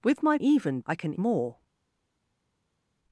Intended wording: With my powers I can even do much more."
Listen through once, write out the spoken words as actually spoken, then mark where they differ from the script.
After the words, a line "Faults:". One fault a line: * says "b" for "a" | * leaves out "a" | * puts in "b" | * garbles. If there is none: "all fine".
With my even I can more."
Faults:
* says "even" for "powers"
* leaves out "even do much"